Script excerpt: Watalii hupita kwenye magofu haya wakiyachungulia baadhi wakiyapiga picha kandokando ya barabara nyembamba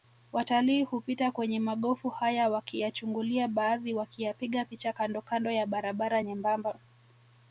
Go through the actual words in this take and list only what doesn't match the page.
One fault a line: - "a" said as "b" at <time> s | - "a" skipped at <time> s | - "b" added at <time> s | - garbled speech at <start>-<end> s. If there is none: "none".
none